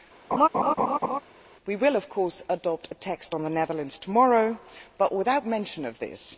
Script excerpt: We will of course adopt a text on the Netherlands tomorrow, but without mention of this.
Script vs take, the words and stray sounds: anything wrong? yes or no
yes